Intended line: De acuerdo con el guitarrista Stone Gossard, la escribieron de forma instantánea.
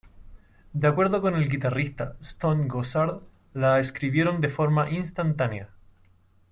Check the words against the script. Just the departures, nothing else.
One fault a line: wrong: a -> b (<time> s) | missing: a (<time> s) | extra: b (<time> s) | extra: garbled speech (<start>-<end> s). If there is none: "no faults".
no faults